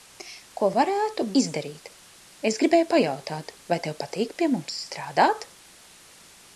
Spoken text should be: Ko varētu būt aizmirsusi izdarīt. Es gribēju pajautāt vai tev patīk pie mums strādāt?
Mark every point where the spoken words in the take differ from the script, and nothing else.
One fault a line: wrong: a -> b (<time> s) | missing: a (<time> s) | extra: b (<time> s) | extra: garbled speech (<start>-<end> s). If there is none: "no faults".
missing: būt aizmirsusi (1.3 s)